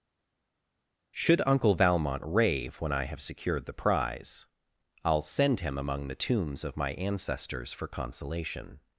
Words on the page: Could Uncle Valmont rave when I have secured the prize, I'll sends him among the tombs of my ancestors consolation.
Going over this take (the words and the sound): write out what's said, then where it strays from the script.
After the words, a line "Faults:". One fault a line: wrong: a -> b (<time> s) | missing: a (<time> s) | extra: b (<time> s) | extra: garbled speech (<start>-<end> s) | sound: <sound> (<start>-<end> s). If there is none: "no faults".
Should Uncle Valmont rave when I have secured the prize, I'll send him among the tombs of my ancestors for consolation.
Faults:
wrong: Could -> Should (1.2 s)
wrong: sends -> send (5.2 s)
extra: for (7.7 s)